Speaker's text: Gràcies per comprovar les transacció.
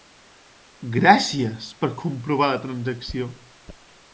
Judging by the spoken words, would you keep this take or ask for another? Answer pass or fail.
fail